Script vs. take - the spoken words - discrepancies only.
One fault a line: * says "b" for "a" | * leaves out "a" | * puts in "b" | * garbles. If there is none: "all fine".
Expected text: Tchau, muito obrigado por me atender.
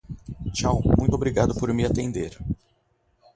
all fine